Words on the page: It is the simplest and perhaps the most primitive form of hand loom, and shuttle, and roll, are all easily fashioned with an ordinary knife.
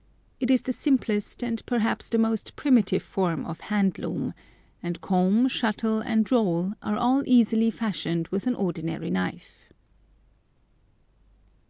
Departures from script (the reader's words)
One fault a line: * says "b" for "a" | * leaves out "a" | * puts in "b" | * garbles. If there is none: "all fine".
* puts in "comb"